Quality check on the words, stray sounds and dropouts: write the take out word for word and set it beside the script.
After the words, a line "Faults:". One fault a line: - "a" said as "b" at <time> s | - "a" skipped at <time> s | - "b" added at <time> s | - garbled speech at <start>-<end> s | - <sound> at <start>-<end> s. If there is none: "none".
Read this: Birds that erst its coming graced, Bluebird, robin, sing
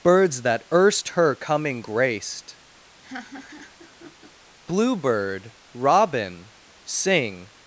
Birds that erst her coming graced, Bluebird, robin, sing
Faults:
- "its" said as "her" at 1.1 s
- laugh at 3.0-4.3 s